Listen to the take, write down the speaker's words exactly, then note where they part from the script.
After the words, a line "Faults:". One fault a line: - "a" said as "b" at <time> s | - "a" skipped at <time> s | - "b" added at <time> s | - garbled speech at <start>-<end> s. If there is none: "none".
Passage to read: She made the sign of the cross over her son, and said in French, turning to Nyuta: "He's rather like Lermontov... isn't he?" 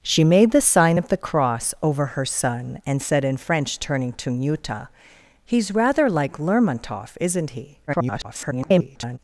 She made the sign of the cross over her son, and said in French, turning to Nyuta: "He's rather like Lermontov... isn't he?" [garbled]
Faults:
- garbled speech at 7.9-9.2 s